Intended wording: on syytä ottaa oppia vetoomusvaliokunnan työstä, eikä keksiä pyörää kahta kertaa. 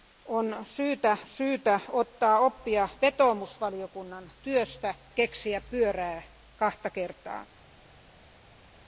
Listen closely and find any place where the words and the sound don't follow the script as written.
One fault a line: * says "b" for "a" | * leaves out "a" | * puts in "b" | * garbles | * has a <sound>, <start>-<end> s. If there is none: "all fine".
* puts in "syytä"
* leaves out "eikä"